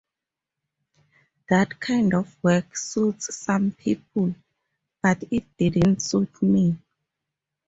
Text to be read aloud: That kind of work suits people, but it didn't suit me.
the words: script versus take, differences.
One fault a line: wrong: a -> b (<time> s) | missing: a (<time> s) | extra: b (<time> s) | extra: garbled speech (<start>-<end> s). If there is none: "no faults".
extra: some (3.3 s)